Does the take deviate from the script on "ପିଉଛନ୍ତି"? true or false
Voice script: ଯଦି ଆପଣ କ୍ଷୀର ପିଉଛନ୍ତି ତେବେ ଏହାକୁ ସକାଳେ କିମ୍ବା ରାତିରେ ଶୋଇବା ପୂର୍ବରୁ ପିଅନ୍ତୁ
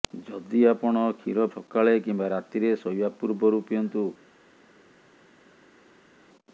true